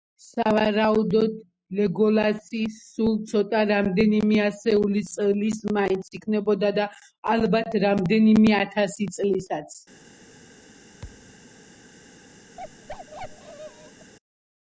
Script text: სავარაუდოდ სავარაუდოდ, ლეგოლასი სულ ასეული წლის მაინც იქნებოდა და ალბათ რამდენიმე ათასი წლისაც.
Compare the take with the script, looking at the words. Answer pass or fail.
fail